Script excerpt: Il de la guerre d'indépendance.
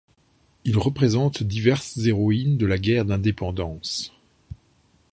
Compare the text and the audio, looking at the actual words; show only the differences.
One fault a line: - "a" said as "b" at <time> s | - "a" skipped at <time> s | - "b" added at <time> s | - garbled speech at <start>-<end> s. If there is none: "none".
- "représente diverses héroïnes" added at 0.8 s